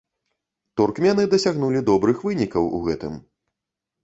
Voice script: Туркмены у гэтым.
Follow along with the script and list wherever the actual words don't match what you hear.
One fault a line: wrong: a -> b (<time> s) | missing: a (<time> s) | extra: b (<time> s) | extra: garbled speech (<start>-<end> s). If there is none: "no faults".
extra: дасягнулі добрых вынікаў (1.3 s)